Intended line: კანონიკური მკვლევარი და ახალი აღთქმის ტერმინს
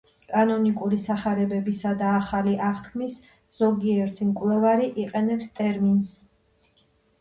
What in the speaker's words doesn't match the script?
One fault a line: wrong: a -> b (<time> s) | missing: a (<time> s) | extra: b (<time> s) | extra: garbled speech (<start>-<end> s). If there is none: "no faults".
wrong: მკვლევარი -> სახარებებისა (1.0 s)
extra: ზოგიერთი მკვლევარი იყენებს (3.6 s)